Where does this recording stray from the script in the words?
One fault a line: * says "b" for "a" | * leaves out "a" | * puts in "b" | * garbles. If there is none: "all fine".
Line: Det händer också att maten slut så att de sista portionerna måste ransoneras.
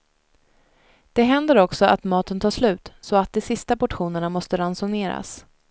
* puts in "tar"